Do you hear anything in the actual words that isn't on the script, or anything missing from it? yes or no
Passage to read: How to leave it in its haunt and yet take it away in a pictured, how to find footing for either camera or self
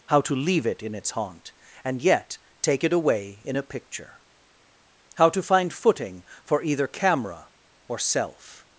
yes